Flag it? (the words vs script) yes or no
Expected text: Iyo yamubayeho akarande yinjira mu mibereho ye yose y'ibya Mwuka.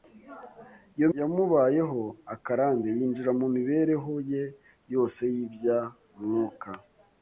no